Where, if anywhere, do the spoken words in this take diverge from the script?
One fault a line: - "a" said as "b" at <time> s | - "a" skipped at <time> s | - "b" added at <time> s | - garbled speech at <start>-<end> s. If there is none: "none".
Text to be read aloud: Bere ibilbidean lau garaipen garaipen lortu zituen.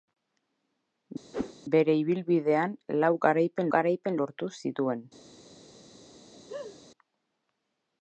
none